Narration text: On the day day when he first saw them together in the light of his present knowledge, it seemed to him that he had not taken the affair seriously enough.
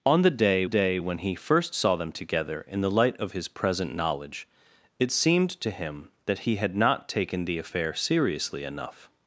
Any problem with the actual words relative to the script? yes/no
no